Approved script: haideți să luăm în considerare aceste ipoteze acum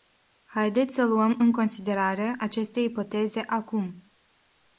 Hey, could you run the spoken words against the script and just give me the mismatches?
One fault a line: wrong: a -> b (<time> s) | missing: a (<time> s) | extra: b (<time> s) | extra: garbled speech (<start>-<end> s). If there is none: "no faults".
no faults